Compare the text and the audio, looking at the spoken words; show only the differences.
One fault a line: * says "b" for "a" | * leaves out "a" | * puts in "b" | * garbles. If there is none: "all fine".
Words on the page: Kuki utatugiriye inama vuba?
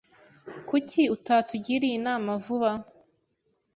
all fine